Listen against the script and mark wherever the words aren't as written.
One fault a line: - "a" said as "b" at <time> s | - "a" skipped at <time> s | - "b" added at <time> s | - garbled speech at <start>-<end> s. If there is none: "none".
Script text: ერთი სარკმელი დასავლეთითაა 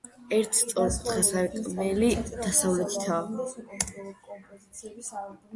- "სწორკუთხა" added at 0.6 s